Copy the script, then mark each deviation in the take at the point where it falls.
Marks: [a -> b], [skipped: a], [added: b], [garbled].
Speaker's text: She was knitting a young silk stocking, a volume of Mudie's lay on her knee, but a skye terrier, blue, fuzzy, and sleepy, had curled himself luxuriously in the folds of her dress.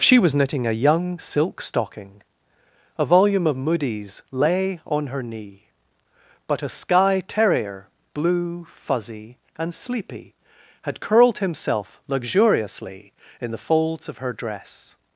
She was knitting a young silk stocking, a volume of Mudie's lay on her knee, but a skye terrier, blue, fuzzy, and sleepy, had curled himself luxuriously in the folds of her dress.